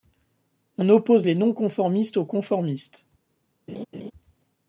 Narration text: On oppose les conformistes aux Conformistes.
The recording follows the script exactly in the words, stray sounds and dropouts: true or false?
false